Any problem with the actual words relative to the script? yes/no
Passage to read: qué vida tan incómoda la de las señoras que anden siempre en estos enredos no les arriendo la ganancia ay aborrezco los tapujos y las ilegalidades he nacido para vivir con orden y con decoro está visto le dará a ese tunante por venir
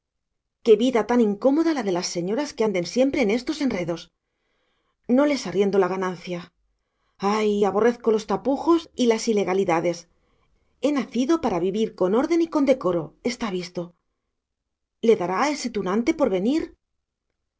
no